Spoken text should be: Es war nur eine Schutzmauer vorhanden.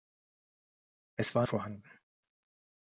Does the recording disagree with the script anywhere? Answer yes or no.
yes